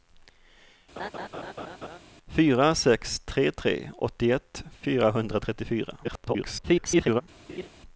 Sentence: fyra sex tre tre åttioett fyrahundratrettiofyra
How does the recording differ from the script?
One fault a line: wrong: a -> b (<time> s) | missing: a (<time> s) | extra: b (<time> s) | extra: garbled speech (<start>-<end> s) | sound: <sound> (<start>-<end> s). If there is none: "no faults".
sound: laugh (1.0-2.0 s)
extra: garbled speech (6.0-7.2 s)
sound: laugh (7.5-7.7 s)